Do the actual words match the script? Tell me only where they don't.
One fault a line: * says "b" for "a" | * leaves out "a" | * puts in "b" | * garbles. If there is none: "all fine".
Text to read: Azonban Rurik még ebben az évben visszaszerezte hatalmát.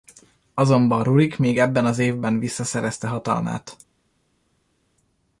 all fine